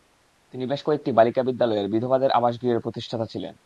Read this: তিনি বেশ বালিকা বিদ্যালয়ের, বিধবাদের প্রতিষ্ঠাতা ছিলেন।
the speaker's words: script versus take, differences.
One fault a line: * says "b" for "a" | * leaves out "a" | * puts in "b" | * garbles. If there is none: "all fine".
* puts in "কয়েকটি"
* puts in "আবাসগৃহের"